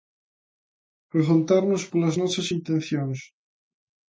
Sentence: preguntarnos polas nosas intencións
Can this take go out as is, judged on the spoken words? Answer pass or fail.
pass